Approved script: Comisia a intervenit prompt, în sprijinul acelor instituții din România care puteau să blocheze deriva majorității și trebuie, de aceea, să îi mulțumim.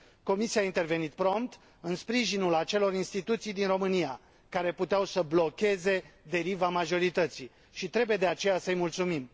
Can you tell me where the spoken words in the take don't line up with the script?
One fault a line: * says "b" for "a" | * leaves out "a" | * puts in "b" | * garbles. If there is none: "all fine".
all fine